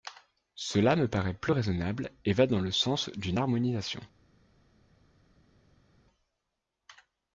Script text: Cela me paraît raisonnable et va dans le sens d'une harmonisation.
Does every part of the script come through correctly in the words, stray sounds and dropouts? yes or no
no